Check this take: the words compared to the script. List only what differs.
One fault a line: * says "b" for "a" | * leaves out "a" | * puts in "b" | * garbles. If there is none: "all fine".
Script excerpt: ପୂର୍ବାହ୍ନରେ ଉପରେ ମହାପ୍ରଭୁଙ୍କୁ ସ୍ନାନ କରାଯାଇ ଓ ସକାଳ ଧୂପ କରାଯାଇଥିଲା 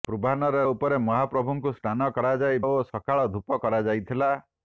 all fine